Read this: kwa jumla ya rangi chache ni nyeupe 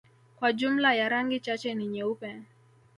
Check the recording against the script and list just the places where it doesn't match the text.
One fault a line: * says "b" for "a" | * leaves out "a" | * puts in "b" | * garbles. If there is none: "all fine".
all fine